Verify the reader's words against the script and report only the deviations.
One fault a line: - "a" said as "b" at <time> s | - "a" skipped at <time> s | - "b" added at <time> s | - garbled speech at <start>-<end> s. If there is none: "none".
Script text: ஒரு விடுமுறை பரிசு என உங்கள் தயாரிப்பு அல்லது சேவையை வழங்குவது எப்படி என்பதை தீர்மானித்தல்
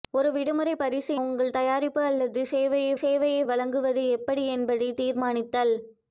- "என" skipped at 1.1 s
- "சேவையை" added at 3.0 s